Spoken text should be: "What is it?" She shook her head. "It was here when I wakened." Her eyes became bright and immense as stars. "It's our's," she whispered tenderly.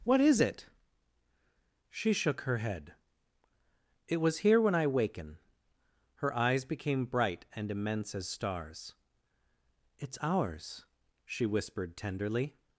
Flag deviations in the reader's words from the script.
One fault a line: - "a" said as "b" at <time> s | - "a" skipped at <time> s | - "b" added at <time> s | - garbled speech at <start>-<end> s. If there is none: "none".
- "wakened" said as "waken" at 4.9 s